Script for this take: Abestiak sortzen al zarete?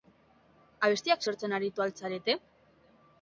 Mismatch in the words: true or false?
true